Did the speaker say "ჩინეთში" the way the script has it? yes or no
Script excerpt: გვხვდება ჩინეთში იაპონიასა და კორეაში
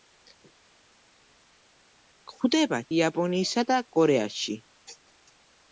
no